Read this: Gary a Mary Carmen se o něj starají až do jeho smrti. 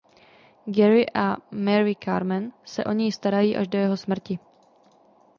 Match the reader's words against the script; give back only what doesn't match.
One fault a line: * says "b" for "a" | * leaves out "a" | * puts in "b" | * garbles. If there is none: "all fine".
all fine